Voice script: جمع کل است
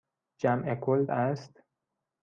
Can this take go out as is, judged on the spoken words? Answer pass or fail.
pass